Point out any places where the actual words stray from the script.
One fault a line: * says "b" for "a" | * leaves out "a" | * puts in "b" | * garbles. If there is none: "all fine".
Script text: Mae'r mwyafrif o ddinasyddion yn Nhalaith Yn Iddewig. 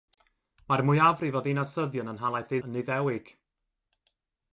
all fine